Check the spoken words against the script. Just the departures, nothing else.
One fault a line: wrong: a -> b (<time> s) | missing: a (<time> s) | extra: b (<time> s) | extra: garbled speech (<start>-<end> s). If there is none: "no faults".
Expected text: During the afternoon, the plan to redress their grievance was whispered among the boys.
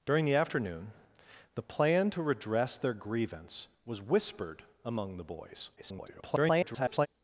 extra: garbled speech (5.8-7.1 s)